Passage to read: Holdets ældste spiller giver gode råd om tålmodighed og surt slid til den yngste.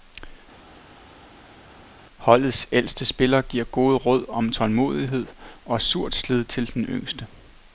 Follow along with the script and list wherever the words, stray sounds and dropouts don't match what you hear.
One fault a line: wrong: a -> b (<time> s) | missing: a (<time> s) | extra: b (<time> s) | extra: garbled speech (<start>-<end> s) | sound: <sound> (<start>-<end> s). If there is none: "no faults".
no faults